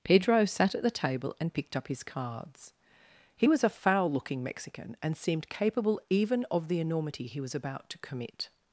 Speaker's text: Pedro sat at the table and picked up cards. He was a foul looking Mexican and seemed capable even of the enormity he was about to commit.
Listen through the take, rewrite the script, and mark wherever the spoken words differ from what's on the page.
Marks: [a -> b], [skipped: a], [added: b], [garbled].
Pedro sat at the table and picked up [added: his] cards. He was a foul looking Mexican and seemed capable even of the enormity he was about to commit.